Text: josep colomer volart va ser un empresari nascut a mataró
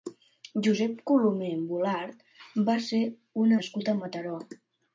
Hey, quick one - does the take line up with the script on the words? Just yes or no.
no